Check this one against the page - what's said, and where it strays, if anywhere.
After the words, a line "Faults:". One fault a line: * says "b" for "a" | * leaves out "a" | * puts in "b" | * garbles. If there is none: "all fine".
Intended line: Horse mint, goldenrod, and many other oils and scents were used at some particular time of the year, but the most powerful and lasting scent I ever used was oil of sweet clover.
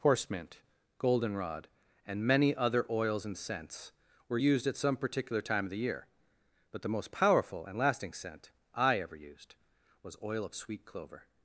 Horse mint, goldenrod, and many other oils and scents were used at some particular time of the year, but the most powerful and lasting scent I ever used was oil of sweet clover.
Faults:
all fine